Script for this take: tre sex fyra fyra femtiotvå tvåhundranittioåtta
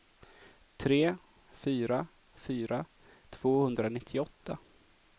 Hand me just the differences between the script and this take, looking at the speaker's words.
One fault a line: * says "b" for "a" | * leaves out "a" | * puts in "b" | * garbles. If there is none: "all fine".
* leaves out "sex"
* leaves out "femtiotvå"